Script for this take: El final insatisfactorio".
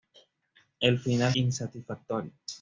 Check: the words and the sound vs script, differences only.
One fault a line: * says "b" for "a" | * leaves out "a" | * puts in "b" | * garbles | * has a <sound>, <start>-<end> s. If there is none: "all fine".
all fine